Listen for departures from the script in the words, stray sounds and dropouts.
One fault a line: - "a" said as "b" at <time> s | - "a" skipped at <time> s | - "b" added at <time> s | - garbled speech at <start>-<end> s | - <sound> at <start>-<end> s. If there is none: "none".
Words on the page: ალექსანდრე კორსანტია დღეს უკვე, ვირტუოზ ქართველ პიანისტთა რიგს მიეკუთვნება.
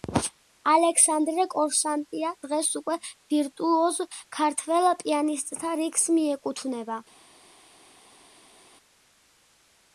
none